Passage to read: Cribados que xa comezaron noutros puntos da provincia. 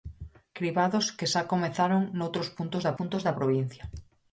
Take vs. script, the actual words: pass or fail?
fail